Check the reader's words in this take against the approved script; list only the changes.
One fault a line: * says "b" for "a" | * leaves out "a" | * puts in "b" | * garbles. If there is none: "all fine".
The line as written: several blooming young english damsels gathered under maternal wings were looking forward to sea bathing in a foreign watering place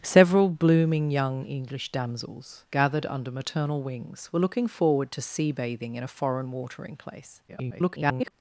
* garbles